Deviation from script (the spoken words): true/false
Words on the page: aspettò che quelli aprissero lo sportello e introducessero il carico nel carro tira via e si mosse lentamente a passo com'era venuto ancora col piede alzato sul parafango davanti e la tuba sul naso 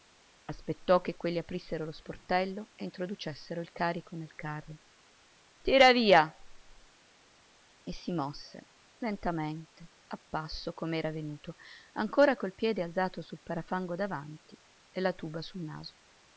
false